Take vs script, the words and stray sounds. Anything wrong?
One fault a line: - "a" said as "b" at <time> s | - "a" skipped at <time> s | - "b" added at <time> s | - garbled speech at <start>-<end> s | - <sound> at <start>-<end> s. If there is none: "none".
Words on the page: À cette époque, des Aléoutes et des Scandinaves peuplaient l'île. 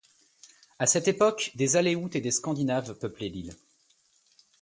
none